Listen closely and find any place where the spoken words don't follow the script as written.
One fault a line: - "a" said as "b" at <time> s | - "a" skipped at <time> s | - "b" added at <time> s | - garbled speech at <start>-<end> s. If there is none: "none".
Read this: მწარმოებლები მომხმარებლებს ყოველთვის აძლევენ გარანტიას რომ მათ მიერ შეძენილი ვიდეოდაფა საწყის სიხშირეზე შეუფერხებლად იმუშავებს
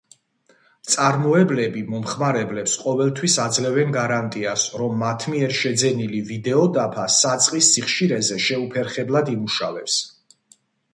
none